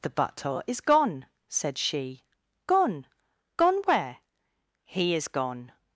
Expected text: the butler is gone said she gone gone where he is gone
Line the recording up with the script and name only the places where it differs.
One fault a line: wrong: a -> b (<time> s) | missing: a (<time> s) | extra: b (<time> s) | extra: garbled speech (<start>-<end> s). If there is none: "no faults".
no faults